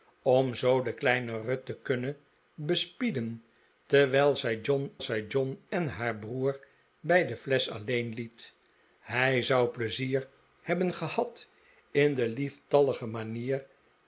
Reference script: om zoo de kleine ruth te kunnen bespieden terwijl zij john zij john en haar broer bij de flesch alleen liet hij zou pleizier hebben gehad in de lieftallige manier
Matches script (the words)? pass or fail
pass